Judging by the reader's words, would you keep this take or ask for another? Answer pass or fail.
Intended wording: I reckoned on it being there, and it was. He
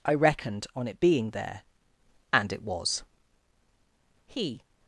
pass